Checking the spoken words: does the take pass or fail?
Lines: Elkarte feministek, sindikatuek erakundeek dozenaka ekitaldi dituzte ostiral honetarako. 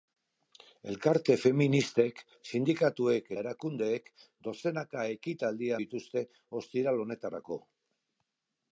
pass